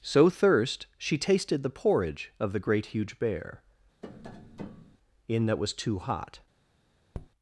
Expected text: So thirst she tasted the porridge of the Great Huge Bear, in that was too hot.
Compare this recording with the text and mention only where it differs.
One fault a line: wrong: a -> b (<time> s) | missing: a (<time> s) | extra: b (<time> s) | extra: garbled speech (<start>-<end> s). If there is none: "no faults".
no faults